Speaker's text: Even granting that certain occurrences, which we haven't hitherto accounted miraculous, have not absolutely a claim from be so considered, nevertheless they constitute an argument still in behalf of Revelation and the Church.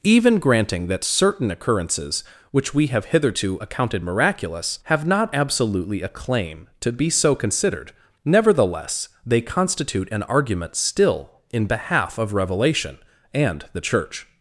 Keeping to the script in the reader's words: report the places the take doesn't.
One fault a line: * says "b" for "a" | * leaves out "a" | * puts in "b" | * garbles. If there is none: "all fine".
* says "have" for "haven't"
* says "to" for "from"